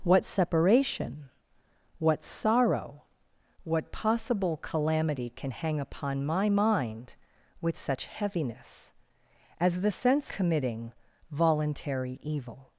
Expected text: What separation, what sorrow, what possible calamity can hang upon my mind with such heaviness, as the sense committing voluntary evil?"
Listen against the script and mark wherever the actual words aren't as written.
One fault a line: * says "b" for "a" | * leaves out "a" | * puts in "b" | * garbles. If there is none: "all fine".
all fine